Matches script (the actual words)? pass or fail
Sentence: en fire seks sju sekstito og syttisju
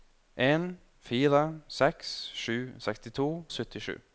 pass